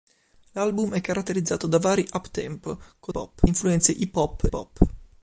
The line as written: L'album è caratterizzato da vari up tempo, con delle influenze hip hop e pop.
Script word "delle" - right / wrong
wrong